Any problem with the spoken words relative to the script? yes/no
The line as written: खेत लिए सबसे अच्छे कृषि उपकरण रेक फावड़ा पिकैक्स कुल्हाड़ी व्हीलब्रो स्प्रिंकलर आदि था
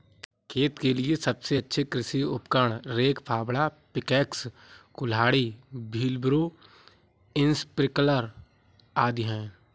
yes